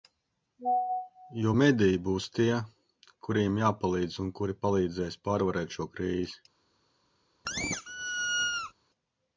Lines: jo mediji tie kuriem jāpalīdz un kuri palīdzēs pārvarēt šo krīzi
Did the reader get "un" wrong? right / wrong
right